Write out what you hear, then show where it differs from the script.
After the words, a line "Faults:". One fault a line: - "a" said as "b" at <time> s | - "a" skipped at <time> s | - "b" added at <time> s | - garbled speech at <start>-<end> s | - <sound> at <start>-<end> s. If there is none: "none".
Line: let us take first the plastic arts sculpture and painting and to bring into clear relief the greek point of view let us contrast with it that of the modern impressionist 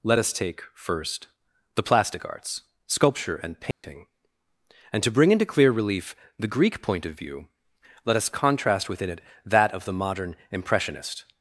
let us take first the plastic arts sculpture and painting and to bring into clear relief the greek point of view let us contrast within it that of the modern impressionist
Faults:
- dropout at 3.7-3.8 s
- "with" said as "within" at 8.9 s